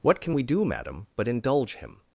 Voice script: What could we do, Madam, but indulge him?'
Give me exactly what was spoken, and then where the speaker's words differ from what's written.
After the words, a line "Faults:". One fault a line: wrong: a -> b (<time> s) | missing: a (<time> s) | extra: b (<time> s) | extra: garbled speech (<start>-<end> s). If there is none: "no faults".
What can we do, Madam, but indulge him?'
Faults:
wrong: could -> can (0.2 s)